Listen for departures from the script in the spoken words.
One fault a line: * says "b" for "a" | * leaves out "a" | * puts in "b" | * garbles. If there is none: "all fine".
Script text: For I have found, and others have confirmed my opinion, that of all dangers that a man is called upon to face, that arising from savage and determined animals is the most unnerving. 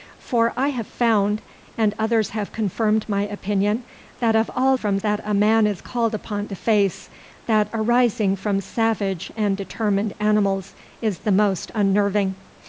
* says "from" for "dangers"